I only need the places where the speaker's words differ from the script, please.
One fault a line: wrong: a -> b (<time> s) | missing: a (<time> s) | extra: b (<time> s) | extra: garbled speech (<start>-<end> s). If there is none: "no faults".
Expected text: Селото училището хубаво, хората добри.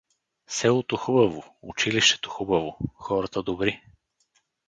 extra: хубаво (1.0 s)